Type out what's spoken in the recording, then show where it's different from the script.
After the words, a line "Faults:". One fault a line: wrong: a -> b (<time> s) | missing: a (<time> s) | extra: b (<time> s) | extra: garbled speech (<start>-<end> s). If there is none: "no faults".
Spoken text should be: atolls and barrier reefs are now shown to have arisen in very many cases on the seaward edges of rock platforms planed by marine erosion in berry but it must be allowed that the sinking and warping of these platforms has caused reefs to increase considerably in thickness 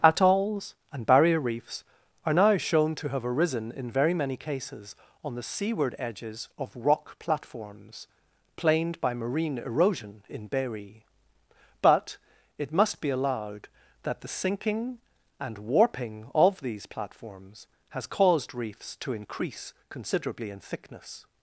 atolls and barrier reefs are now shown to have arisen in very many cases on the seaward edges of rock platforms planed by marine erosion in berry but it must be allowed that the sinking and warping of these platforms has caused reefs to increase considerably in thickness
Faults:
no faults